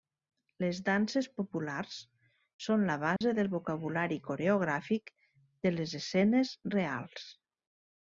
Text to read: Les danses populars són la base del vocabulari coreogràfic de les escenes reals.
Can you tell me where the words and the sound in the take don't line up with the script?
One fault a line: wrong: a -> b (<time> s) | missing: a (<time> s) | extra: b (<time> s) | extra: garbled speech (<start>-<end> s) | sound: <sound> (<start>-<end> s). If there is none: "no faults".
sound: dropout (3.2-3.2 s)